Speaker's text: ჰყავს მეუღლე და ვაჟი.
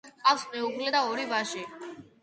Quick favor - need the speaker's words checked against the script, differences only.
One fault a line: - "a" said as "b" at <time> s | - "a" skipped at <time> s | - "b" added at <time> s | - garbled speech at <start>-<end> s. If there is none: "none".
- "ორი" added at 1.1 s